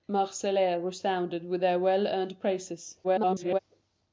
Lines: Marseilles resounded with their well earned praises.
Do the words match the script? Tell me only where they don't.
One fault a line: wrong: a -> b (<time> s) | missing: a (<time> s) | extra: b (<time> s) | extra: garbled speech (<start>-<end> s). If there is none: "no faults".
extra: garbled speech (3.0-3.6 s)